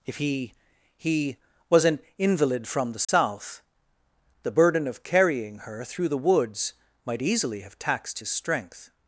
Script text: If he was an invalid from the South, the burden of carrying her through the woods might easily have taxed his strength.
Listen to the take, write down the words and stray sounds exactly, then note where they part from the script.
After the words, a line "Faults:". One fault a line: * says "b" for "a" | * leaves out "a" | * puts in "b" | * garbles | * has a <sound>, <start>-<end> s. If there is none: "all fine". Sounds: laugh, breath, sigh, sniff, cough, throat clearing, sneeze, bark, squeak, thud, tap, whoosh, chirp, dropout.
If he he was an invalid from the South, the burden of carrying her through the woods might easily have taxed his strength.
Faults:
* puts in "he"
* has a dropout, 3.0-3.1 s